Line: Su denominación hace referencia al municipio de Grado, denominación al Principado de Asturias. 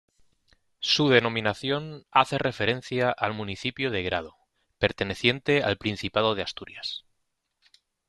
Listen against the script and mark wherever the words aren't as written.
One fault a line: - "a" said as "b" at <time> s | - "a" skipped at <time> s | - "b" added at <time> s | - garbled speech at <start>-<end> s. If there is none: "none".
- "denominación" said as "perteneciente" at 4.8 s